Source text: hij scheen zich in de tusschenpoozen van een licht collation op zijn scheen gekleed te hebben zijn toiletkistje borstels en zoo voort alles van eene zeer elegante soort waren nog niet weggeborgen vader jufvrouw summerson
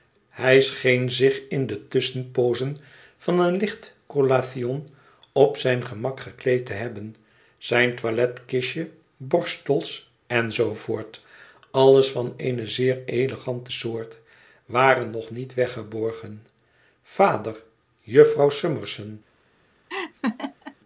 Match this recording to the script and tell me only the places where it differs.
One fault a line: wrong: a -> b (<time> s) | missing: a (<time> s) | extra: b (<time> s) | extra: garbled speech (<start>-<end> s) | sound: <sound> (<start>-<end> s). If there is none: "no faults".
wrong: scheen -> gemak (5.8 s)
sound: laugh (19.9-20.8 s)